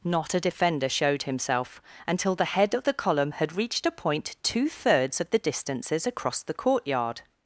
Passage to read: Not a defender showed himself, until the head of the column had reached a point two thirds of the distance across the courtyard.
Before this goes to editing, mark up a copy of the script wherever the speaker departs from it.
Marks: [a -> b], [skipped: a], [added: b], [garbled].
Not a defender showed himself, until the head of the column had reached a point two thirds of the [distance -> distances] across the courtyard.